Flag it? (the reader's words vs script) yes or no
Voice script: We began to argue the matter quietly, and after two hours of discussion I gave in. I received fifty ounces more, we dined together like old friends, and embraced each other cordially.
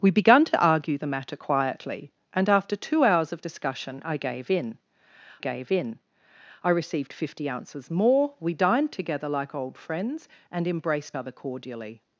yes